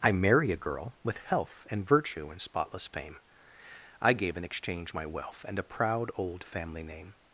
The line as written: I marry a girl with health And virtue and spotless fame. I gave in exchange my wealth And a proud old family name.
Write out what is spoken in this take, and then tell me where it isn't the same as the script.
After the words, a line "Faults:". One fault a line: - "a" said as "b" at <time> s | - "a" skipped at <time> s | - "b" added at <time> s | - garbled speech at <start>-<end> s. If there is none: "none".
I marry a girl with health And virtue and spotless fame. I gave in exchange my wealth And a proud old family name.
Faults:
none